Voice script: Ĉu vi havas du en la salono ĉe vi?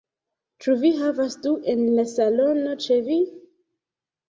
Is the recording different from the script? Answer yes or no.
no